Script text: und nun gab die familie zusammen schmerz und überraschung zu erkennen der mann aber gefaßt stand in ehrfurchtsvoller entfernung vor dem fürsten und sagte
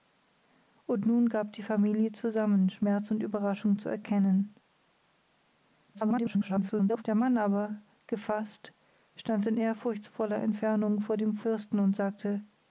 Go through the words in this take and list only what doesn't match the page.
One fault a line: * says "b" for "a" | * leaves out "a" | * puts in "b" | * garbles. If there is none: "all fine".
* garbles